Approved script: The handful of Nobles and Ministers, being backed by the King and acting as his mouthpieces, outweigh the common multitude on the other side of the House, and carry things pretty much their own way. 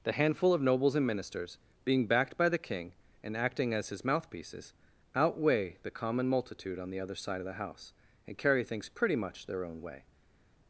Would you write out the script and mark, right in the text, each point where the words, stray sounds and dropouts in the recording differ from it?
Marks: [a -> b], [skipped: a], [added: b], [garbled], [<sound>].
The handful of Nobles and Ministers, being backed by the King and acting as his mouthpieces, outweigh the common multitude on the other side of the House, and carry things pretty much their own way.